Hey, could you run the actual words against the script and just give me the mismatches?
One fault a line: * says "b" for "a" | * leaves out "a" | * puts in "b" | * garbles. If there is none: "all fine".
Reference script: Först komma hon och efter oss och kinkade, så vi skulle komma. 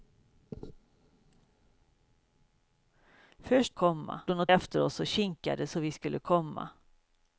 all fine